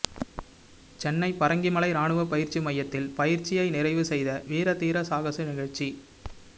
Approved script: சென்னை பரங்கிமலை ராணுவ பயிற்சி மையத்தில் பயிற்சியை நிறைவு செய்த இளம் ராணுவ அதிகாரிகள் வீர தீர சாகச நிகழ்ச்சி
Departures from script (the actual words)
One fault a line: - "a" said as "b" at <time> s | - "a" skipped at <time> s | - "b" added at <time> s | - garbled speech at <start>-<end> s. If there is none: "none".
- "இளம் ராணுவ அதிகாரிகள்" skipped at 4.4 s